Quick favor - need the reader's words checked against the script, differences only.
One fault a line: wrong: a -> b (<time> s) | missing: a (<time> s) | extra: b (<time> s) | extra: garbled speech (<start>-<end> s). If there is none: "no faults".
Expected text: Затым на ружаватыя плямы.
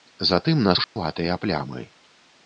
no faults